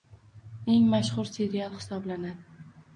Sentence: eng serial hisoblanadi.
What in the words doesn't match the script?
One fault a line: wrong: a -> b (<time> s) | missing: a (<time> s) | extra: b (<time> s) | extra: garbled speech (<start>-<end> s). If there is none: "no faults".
extra: mashhur (0.9 s)